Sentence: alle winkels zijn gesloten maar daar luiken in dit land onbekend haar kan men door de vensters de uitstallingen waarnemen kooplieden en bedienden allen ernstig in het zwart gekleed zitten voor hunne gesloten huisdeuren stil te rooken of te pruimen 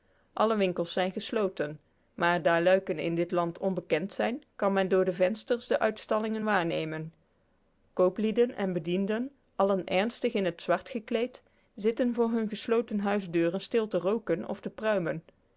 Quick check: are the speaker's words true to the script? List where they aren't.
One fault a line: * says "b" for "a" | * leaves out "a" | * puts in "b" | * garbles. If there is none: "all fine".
* says "zijn" for "haar"